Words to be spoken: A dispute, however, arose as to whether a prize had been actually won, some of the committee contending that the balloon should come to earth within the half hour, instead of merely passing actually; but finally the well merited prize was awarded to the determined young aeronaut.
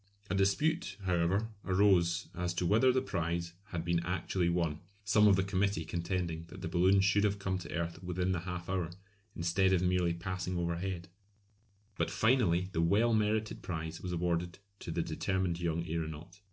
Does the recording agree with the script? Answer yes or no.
no